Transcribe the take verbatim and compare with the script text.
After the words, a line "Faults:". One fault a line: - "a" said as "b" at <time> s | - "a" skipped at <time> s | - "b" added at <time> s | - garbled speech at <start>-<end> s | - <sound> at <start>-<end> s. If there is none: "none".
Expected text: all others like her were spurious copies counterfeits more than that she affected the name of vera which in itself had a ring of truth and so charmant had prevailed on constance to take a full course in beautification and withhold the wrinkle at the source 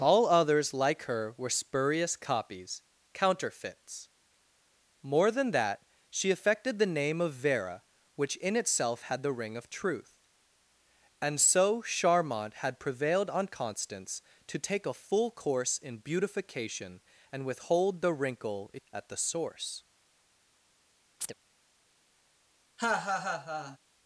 all others like her were spurious copies counterfeits more than that she affected the name of vera which in itself had the ring of truth and so charmant had prevailed on constance to take a full course in beautification and withhold the wrinkle at the source
Faults:
- "a" said as "the" at 9.2 s
- chirp at 21.2-21.3 s
- laugh at 22.8-23.8 s